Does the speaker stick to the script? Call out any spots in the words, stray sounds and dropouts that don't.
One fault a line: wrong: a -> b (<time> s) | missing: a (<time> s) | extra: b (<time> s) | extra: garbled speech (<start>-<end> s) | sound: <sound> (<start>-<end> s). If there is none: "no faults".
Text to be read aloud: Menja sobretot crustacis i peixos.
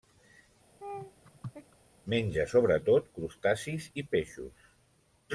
sound: laugh (0.8-1.8 s)